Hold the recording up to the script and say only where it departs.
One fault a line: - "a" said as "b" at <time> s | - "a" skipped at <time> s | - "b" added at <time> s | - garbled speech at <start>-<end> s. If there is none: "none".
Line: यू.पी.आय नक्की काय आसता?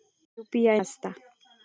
- "नक्की काय" skipped at 0.8 s